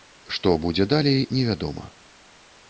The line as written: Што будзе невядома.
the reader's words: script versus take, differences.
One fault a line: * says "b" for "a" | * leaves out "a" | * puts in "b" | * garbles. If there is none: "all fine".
* puts in "далей"